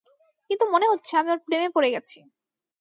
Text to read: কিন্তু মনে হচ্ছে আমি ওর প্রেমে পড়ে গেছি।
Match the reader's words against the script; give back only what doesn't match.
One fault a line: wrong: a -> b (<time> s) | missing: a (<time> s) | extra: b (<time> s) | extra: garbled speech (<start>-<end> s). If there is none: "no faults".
no faults